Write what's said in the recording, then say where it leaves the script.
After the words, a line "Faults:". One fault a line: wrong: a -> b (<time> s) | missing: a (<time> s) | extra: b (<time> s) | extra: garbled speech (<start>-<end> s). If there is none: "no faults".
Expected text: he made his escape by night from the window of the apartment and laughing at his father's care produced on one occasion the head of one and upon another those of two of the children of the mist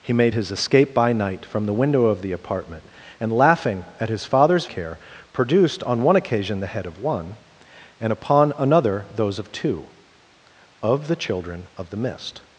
he made his escape by night from the window of the apartment and laughing at his father's care produced on one occasion the head of one and upon another those of two of the children of the mist
Faults:
no faults